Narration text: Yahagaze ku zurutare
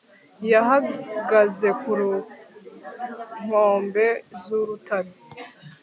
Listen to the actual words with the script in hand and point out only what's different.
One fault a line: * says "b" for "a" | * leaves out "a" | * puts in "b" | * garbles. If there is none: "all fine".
* puts in "nkombe"